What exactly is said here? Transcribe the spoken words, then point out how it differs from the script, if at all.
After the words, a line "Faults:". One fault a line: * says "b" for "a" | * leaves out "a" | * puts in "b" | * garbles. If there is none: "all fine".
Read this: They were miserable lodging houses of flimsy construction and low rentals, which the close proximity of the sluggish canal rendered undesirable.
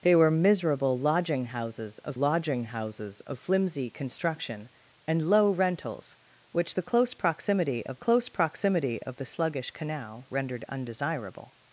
They were miserable lodging houses of lodging houses of flimsy construction and low rentals, which the close proximity of close proximity of the sluggish canal rendered undesirable.
Faults:
* puts in "lodging houses of"
* puts in "close proximity of"